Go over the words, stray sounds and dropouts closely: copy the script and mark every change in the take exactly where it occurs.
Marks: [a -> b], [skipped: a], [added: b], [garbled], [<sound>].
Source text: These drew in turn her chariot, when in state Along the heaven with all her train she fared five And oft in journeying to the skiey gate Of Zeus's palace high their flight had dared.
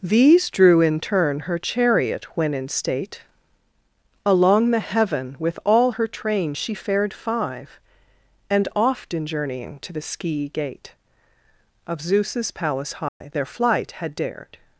These drew in turn her chariot, when in state Along the heaven with all her train she fared five And oft in journeying to the skiey gate Of Zeus's palace high [dropout] their flight had dared.